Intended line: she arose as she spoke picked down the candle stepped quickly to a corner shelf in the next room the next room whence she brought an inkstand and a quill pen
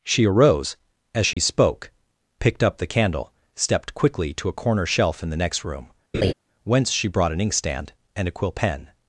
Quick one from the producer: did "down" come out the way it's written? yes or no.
no